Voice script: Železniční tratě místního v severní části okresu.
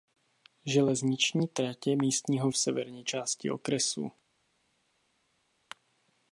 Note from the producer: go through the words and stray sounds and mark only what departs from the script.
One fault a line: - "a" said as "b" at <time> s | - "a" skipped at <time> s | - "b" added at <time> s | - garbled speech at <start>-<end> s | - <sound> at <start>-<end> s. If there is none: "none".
none